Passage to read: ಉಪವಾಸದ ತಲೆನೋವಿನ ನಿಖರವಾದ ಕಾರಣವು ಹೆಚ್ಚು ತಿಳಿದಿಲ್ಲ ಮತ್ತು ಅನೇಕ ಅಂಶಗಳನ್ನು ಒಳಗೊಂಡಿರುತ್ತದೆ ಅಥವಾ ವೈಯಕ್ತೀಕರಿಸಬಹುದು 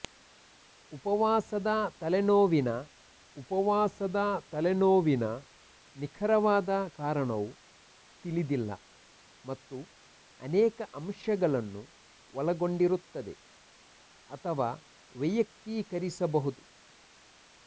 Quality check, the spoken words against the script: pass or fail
fail